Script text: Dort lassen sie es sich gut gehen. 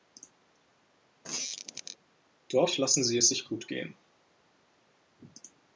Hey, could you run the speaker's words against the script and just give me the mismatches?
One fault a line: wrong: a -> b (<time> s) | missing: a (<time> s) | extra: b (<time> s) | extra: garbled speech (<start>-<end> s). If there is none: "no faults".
no faults